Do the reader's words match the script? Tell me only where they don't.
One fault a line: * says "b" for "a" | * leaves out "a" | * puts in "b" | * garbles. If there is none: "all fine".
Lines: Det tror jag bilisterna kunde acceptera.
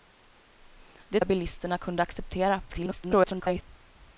* leaves out "tror"
* garbles